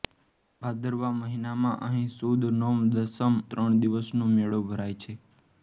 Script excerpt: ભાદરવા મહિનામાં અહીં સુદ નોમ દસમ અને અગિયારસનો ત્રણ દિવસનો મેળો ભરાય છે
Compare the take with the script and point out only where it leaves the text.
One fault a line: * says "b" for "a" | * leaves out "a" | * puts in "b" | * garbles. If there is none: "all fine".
* leaves out "અને અગિયારસનો"